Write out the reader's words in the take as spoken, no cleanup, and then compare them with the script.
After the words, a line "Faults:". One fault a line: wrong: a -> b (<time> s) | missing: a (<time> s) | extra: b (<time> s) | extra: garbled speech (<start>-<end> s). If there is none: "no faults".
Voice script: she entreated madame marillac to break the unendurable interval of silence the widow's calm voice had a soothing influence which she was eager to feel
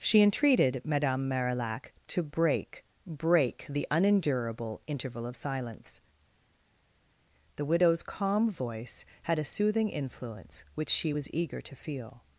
she entreated madame marillac to break break the unendurable interval of silence the widow's calm voice had a soothing influence which she was eager to feel
Faults:
extra: break (3.0 s)